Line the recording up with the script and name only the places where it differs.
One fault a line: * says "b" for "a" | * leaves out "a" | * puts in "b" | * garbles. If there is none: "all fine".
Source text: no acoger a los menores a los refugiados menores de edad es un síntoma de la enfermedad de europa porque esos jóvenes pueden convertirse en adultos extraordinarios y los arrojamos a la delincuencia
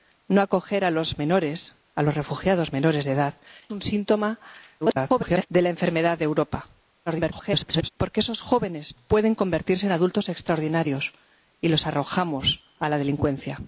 * leaves out "es"
* garbles
* garbles